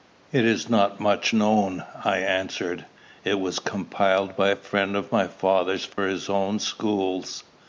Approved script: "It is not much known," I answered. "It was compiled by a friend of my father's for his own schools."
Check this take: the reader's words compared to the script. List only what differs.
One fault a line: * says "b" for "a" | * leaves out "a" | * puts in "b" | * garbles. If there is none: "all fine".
all fine